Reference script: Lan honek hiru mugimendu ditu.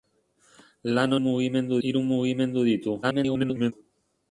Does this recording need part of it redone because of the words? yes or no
yes